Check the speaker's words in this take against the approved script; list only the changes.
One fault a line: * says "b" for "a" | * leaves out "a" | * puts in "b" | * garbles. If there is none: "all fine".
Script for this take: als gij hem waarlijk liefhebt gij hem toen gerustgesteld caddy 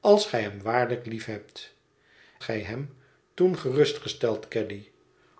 all fine